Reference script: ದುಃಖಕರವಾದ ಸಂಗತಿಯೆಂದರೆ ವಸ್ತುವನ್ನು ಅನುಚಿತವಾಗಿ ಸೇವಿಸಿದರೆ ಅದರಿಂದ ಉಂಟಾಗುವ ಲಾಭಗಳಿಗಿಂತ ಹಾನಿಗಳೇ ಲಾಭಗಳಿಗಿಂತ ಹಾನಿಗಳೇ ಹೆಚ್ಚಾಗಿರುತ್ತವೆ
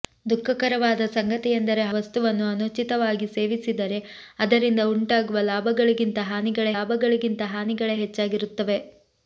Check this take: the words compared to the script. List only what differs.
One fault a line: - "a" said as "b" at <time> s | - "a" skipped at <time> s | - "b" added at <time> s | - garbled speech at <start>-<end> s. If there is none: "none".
none